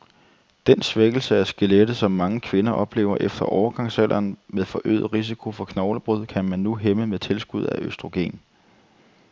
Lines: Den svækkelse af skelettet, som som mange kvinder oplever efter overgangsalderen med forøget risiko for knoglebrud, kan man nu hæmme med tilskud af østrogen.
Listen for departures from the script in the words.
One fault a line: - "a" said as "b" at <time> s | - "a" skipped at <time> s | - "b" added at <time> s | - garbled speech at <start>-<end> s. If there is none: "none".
- "som" skipped at 2.1 s